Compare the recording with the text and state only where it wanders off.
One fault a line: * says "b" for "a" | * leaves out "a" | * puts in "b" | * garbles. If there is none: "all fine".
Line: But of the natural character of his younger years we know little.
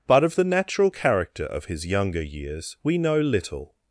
all fine